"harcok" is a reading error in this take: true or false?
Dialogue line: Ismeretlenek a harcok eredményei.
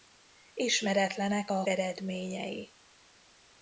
true